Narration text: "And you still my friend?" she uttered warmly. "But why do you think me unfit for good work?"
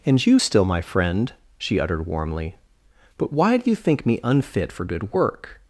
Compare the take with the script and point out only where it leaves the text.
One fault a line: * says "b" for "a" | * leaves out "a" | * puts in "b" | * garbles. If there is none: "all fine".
all fine